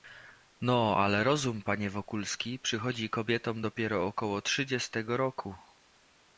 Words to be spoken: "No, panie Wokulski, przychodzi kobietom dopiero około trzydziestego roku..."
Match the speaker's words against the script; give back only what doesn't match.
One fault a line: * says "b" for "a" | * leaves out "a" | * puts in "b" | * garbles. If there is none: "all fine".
* puts in "ale rozum"